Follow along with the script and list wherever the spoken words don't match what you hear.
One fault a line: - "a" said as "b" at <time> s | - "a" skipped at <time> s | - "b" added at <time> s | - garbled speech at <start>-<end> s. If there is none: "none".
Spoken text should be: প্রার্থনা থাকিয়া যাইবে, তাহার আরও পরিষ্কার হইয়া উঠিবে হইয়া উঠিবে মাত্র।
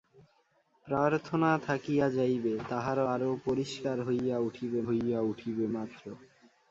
none